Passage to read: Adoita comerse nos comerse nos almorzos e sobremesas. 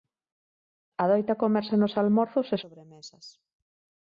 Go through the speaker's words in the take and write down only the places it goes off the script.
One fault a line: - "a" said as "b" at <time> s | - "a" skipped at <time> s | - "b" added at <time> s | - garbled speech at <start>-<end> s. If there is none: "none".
- "comerse nos" skipped at 1.9 s